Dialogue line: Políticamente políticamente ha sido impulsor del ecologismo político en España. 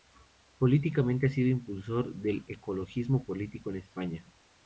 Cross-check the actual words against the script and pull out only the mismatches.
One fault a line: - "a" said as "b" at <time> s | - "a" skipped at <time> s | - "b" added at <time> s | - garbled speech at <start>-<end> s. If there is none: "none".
- "políticamente" skipped at 1.3 s